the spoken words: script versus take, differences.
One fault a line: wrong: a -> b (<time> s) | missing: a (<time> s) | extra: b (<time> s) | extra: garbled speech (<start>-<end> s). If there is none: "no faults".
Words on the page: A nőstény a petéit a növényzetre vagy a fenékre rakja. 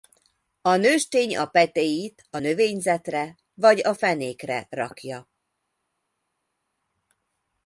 no faults